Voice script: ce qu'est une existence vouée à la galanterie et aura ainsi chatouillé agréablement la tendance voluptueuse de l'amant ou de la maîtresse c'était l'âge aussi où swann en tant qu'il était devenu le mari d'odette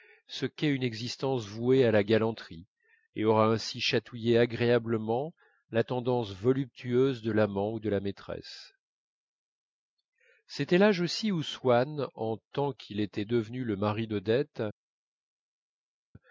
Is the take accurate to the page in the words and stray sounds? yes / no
yes